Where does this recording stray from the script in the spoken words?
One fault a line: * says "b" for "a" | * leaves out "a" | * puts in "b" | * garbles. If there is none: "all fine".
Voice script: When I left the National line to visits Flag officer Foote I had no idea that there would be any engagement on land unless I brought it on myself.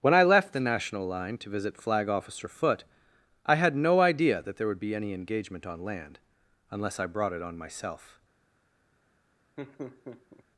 * says "visit" for "visits"